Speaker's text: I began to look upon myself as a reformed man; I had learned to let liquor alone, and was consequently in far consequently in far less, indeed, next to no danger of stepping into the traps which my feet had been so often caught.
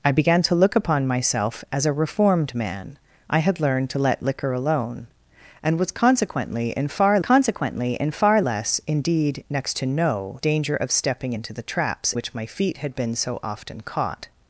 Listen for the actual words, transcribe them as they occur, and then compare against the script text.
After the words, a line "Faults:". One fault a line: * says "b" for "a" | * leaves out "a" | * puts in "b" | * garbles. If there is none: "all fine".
I began to look upon myself as a reformed man; I had learned to let liquor alone, and was consequently in far consequently in far less, indeed, next to no danger of stepping into the traps which my feet had been so often caught.
Faults:
all fine